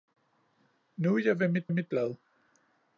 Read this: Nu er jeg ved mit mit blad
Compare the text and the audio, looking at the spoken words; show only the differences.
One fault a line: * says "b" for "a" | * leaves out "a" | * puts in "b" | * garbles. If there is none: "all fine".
all fine